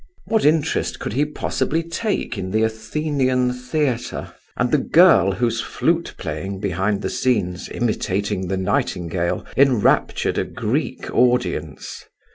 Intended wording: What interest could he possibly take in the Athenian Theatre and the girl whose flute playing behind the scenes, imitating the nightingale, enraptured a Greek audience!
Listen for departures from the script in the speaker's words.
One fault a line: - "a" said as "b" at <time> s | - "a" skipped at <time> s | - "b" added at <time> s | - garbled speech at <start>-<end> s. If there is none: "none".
none